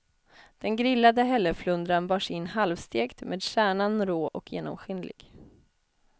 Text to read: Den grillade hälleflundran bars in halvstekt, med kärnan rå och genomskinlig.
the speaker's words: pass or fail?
pass